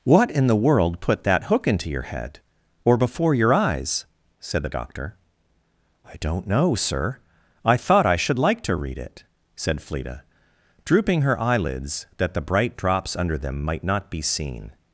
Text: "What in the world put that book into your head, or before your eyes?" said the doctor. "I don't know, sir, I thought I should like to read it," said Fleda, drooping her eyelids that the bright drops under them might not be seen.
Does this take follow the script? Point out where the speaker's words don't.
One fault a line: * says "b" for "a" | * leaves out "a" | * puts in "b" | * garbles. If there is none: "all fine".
* says "hook" for "book"